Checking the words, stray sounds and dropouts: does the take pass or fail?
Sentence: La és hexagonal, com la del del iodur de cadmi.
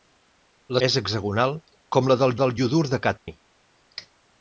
fail